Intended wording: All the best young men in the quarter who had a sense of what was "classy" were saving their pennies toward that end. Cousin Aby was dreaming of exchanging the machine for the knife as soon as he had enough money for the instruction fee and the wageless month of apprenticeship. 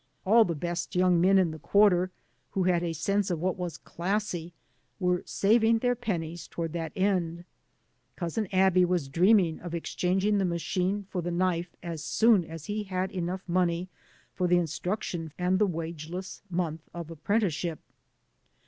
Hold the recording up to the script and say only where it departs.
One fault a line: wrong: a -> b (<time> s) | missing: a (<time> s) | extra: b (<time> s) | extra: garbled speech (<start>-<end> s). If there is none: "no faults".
missing: fee (15.3 s)